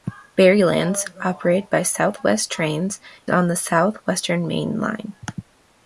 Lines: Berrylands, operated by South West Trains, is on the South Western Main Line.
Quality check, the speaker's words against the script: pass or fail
fail